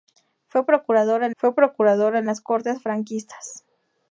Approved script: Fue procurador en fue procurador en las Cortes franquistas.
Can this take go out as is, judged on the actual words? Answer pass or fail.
pass